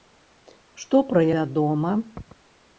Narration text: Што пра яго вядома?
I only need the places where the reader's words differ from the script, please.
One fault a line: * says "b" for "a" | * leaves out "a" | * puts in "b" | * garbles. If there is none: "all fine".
* leaves out "яго"